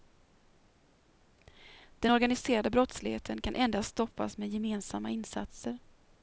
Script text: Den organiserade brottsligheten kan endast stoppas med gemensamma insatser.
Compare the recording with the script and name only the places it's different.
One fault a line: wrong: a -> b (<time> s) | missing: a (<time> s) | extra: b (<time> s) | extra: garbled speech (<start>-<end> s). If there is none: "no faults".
no faults